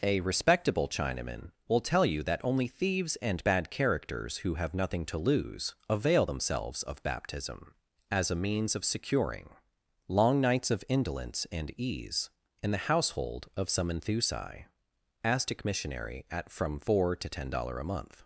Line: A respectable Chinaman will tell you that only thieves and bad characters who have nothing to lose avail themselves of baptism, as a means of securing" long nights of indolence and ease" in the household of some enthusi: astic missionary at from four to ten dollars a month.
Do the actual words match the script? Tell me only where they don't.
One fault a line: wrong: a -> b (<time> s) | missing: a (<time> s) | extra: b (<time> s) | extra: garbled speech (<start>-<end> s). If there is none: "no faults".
no faults